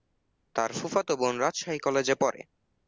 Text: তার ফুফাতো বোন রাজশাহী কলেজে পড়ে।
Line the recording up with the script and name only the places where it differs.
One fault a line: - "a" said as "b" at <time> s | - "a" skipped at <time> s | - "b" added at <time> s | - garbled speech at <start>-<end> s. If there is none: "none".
none